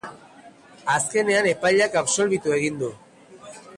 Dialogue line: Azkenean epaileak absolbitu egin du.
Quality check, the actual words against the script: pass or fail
pass